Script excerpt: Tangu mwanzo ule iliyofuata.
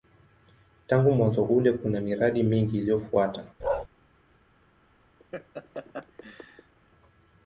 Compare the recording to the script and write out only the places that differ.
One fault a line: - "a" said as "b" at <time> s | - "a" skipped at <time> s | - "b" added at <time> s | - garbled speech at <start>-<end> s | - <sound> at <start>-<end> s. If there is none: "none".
- "kuna miradi mingi" added at 1.7 s
- bark at 3.6-3.9 s
- laugh at 5.2-6.7 s